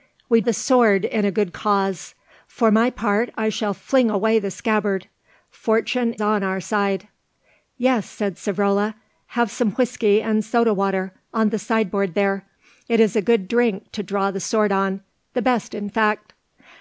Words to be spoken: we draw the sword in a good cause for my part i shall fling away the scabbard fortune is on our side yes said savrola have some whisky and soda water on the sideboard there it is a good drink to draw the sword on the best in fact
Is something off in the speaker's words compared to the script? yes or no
yes